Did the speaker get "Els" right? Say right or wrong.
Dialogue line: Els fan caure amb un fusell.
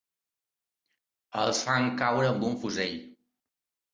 right